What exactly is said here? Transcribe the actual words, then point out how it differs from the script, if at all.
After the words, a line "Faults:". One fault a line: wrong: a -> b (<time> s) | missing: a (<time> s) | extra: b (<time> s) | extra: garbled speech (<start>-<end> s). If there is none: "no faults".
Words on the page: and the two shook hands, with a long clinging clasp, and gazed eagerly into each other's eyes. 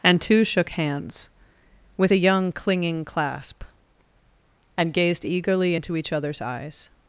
and two shook hands, with a young clinging clasp, and gazed eagerly into each other's eyes.
Faults:
missing: the (0.2 s)
wrong: long -> young (2.2 s)